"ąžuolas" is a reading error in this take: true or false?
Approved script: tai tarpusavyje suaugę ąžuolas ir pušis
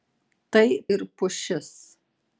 true